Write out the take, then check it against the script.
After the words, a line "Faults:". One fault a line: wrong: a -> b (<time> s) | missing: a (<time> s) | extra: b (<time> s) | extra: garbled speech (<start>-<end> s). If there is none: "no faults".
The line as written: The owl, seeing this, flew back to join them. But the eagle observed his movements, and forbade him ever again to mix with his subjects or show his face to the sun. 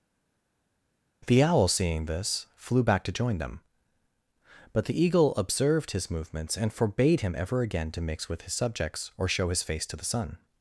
The owl, seeing this, flew back to join them. But the eagle observed his movements, and forbade him ever again to mix with his subjects or show his face to the sun.
Faults:
no faults